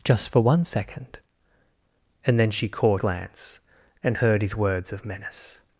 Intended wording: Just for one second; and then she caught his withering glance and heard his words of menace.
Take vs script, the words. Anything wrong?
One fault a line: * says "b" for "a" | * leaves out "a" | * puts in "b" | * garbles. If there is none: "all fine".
* leaves out "his withering"